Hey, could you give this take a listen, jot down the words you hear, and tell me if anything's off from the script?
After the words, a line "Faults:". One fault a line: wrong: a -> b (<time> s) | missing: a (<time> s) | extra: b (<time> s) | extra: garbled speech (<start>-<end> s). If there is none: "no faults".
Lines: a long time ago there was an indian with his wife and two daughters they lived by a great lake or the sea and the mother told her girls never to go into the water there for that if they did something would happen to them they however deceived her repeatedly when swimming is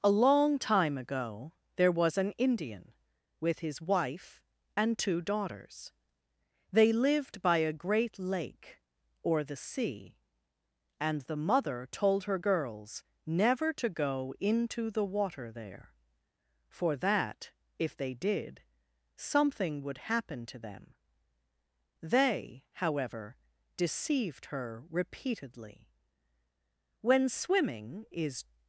a long time ago there was an indian with his wife and two daughters they lived by a great lake or the sea and the mother told her girls never to go into the water there for that if they did something would happen to them they however deceived her repeatedly when swimming is
Faults:
no faults